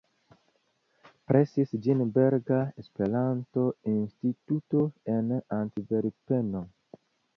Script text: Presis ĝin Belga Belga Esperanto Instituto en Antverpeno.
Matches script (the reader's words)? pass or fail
fail